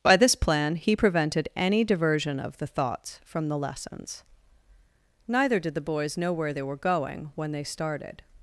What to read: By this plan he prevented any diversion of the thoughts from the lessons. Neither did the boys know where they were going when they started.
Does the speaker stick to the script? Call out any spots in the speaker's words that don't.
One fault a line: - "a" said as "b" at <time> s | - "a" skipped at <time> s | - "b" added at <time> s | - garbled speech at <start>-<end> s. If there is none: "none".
none